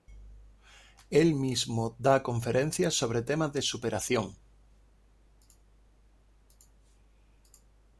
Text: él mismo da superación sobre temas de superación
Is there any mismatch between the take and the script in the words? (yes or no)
yes